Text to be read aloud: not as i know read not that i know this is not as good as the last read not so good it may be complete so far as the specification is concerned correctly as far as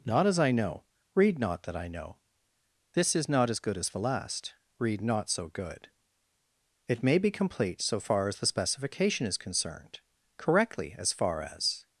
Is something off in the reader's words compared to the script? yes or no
no